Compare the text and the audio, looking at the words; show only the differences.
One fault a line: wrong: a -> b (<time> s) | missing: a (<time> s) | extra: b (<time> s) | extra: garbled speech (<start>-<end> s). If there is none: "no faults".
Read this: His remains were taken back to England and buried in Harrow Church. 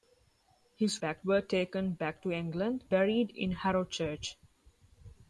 wrong: remains -> back (1.0 s)
missing: and (2.8 s)